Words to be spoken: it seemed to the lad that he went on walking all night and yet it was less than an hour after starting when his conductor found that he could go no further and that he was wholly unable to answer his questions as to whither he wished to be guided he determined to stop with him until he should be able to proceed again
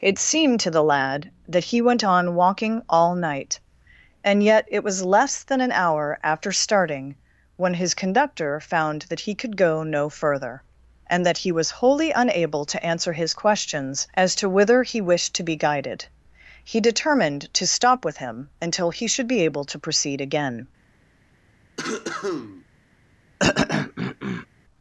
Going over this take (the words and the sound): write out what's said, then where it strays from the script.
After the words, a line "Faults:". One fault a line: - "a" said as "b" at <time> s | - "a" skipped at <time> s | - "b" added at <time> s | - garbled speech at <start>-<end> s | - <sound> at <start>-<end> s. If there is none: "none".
it seemed to the lad that he went on walking all night and yet it was less than an hour after starting when his conductor found that he could go no further and that he was wholly unable to answer his questions as to whither he wished to be guided he determined to stop with him until he should be able to proceed again
Faults:
- cough at 21.8-22.6 s
- throat clearing at 23.4-24.5 s